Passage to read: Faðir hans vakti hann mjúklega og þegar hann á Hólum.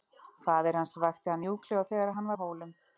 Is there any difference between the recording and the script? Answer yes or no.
no